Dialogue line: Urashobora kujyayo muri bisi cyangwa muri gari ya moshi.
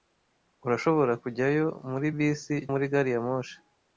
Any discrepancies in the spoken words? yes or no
yes